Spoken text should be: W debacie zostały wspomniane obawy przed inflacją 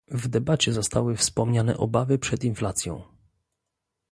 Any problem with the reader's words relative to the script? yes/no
no